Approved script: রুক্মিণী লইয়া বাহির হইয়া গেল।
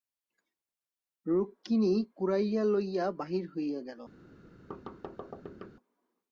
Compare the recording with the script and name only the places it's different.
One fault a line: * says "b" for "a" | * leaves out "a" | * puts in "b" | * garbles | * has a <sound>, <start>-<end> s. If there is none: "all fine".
* puts in "কুড়াইয়া"
* has a thud, 4.7-5.7 s